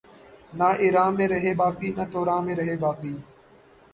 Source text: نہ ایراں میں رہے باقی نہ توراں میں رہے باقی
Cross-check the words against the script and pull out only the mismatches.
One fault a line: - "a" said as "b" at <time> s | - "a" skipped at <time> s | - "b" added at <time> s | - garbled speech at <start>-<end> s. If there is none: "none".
none